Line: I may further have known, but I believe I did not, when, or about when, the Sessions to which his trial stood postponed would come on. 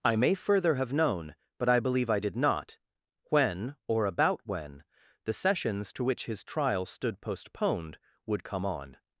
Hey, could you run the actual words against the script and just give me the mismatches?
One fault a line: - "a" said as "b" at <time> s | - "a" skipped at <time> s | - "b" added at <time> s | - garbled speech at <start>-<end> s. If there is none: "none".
none